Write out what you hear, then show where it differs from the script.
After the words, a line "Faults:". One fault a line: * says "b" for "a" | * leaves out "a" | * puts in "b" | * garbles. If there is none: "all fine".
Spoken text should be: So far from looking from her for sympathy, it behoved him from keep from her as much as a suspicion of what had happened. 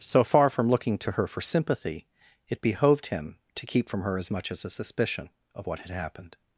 So far from looking to her for sympathy, it behoved him to keep from her as much as a suspicion of what had happened.
Faults:
* says "to" for "from"
* says "to" for "from"